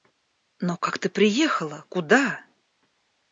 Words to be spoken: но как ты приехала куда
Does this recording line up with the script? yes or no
yes